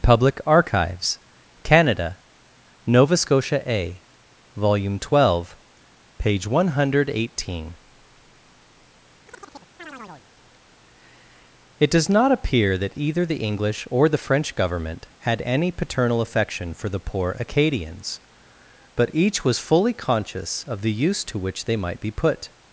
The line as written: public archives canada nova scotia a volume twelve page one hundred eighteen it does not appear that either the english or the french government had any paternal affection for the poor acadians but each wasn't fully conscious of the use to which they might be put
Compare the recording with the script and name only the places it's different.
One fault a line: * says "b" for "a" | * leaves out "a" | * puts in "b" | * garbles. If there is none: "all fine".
* says "was" for "wasn't"